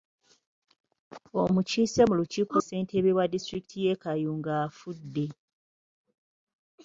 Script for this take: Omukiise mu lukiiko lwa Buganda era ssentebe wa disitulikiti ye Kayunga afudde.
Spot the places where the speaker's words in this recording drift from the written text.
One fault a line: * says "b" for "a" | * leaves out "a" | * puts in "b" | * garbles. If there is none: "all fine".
* leaves out "lwa Buganda era"